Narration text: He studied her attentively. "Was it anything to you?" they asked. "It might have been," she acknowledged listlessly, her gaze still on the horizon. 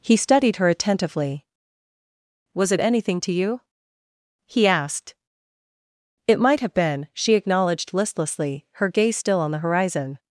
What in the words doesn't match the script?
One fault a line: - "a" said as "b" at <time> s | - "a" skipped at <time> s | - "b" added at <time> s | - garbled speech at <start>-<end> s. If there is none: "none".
- "they" said as "he" at 4.5 s